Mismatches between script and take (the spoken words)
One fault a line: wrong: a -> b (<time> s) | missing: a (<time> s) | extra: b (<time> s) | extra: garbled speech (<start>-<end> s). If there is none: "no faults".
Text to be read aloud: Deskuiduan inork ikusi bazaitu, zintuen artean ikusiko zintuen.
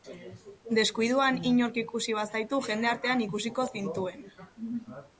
wrong: zintuen -> jende (2.7 s)